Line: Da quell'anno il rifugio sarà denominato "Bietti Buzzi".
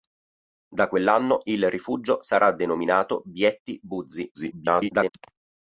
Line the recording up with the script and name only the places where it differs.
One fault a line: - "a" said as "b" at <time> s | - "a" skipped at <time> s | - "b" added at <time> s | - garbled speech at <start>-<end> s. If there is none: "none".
- garbled speech at 4.3-5.1 s